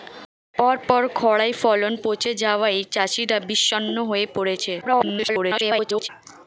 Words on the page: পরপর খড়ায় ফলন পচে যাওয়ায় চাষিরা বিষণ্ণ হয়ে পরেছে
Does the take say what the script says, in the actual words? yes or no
no